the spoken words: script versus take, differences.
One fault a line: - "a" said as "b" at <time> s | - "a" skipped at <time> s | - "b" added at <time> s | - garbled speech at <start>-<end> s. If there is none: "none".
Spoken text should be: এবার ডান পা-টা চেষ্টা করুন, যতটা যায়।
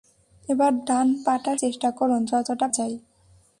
none